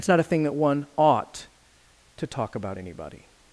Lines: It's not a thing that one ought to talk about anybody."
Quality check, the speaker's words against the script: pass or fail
pass